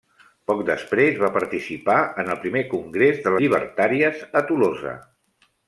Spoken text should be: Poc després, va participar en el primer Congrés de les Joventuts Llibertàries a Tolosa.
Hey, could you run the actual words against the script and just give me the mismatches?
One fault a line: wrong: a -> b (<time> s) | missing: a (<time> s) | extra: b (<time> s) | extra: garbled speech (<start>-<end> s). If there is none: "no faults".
missing: les Joventuts (3.3 s)